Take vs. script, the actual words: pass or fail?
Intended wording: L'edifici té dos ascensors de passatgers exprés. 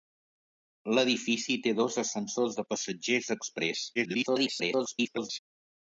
fail